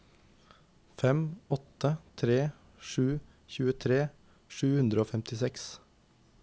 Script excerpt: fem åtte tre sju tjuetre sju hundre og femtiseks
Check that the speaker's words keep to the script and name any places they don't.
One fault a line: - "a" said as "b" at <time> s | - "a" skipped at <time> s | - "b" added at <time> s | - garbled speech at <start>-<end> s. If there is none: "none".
none